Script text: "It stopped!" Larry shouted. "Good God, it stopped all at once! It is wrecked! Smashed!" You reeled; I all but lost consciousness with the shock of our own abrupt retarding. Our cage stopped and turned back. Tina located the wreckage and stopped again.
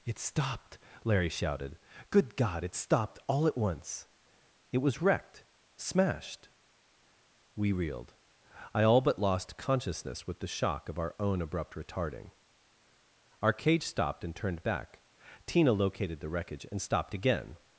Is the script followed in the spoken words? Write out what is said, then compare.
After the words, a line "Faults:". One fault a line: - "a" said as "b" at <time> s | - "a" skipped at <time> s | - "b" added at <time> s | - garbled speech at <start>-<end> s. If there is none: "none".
"It stopped!" Larry shouted. "Good God, it stopped all at once! It was wrecked! Smashed!" We reeled; I all but lost consciousness with the shock of our own abrupt retarding. Our cage stopped and turned back. Tina located the wreckage and stopped again.
Faults:
- "is" said as "was" at 4.8 s
- "You" said as "We" at 7.5 s